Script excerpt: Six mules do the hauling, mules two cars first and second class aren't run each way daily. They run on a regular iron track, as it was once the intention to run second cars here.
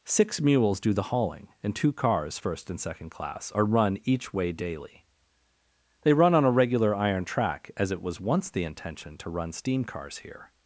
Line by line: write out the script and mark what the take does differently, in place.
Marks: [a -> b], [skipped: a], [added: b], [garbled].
Six mules do the hauling, [mules -> and] two cars first and second class [aren't -> are] run each way daily. They run on a regular iron track, as it was once the intention to run [second -> steam] cars here.